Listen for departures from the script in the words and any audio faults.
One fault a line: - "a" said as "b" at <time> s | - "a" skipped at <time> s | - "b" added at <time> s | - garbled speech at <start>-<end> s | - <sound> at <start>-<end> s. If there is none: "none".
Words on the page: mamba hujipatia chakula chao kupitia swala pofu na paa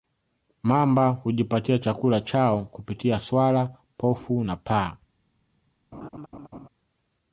- laugh at 5.9-6.7 s